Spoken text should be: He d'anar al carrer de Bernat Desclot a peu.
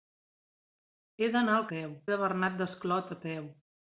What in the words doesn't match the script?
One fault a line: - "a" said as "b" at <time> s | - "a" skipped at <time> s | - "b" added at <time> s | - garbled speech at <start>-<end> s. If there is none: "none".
- "carrer" said as "peu" at 1.7 s